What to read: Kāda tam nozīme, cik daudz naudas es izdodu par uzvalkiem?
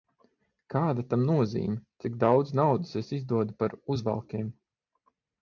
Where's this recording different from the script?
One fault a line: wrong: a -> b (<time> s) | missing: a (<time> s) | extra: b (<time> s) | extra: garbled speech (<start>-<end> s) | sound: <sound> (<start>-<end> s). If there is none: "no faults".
no faults